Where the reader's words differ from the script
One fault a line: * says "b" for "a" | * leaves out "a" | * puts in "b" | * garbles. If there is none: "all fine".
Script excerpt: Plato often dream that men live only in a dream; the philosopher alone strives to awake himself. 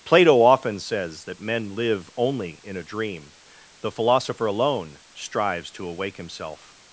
* says "says" for "dream"